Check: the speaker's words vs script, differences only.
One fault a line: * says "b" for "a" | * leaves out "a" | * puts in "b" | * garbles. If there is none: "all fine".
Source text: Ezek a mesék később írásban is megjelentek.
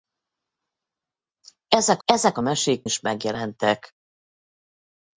* puts in "ezek"
* leaves out "később írásban"